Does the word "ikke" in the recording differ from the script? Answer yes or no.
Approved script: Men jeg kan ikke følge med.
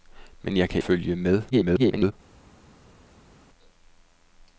yes